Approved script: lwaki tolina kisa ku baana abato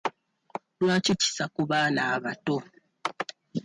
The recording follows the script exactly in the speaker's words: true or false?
false